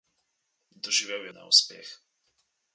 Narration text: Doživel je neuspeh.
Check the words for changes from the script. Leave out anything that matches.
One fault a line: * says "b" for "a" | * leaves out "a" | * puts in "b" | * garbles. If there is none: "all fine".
all fine